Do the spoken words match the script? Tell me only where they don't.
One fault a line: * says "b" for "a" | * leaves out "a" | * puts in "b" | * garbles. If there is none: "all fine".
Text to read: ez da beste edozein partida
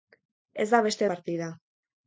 * leaves out "edozein"